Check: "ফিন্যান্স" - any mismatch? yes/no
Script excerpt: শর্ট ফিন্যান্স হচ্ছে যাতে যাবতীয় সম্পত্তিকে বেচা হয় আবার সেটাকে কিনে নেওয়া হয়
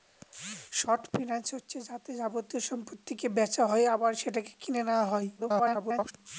no